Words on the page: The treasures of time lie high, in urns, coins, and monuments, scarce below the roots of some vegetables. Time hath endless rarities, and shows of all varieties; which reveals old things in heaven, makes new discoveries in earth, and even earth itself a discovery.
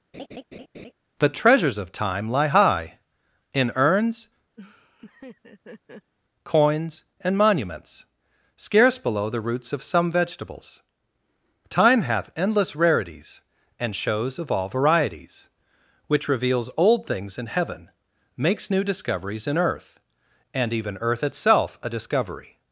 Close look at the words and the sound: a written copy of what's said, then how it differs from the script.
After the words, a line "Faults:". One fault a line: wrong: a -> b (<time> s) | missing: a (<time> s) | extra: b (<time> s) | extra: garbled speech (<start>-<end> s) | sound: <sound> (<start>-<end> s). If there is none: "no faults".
The treasures of time lie high, in urns, coins, and monuments, scarce below the roots of some vegetables. Time hath endless rarities, and shows of all varieties; which reveals old things in heaven, makes new discoveries in earth, and even earth itself a discovery.
Faults:
sound: laugh (0.1-0.9 s)
sound: laugh (4.6-6.1 s)